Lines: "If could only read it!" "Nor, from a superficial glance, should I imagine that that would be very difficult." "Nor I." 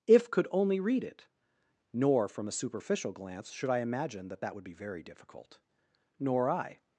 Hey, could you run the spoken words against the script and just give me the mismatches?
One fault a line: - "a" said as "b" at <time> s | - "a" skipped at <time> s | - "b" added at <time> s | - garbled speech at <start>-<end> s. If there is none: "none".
none